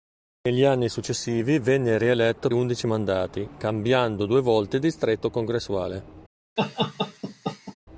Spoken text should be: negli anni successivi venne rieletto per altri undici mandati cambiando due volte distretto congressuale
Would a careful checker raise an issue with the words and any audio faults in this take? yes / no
yes